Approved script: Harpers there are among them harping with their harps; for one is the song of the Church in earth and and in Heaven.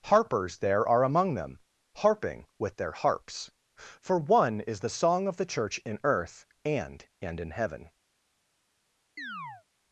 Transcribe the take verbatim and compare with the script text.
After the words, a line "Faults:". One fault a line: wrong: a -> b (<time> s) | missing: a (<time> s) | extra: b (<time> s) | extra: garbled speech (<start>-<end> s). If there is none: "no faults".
Harpers there are among them harping with their harps; for one is the song of the Church in earth and and in Heaven.
Faults:
no faults